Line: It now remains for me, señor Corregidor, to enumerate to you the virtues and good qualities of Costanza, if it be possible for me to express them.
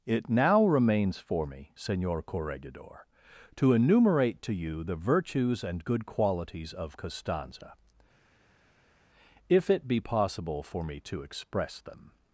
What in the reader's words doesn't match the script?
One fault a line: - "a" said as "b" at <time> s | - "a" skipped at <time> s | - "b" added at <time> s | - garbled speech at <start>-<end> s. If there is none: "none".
none